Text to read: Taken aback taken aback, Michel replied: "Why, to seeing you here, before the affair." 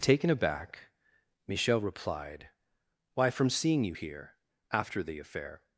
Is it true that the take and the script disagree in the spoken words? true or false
true